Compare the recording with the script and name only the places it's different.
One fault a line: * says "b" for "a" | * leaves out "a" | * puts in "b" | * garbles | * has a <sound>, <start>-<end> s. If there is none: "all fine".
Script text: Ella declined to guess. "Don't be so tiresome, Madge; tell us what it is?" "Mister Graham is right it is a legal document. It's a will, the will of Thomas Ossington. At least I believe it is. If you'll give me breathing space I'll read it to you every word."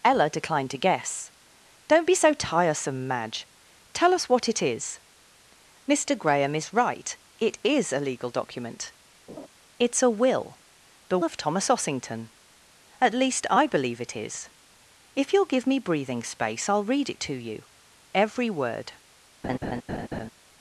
* has a laugh, 9.3-9.5 s
* leaves out "will"
* has a laugh, 19.4-20.3 s